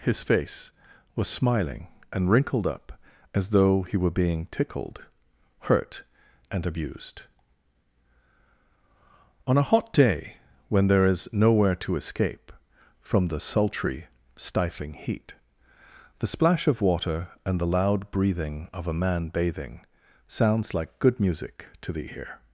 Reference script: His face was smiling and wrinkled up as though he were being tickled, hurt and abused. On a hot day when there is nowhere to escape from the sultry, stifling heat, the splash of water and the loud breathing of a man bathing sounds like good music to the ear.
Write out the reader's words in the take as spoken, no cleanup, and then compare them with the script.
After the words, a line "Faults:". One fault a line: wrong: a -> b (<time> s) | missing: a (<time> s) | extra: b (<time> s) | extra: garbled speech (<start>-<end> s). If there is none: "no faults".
His face was smiling and wrinkled up as though he were being tickled, hurt and abused. On a hot day when there is nowhere to escape from the sultry, stifling heat, the splash of water and the loud breathing of a man bathing sounds like good music to the ear.
Faults:
no faults